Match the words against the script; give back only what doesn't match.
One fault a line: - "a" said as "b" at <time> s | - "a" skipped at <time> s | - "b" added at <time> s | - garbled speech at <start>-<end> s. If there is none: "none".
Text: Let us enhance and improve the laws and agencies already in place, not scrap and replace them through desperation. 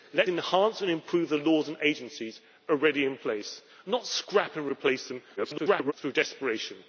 - "us" skipped at 0.2 s
- garbled speech at 5.4-5.9 s